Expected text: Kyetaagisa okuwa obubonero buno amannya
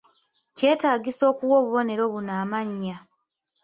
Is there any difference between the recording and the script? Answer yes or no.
no